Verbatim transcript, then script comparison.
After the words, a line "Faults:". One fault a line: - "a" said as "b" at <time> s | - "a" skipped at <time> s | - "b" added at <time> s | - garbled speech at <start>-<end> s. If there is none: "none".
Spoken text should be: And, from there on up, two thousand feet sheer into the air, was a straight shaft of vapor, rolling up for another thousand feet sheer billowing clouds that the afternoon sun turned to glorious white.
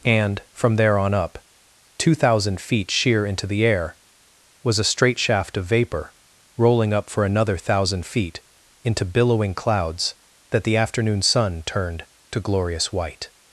And, from there on up, two thousand feet sheer into the air, was a straight shaft of vapor, rolling up for another thousand feet into billowing clouds that the afternoon sun turned to glorious white.
Faults:
- "sheer" said as "into" at 8.8 s